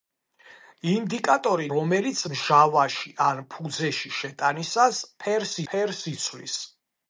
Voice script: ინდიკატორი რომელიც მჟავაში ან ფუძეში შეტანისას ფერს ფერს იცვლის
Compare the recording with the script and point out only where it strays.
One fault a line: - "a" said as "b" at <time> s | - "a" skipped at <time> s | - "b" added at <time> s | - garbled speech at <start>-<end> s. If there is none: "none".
none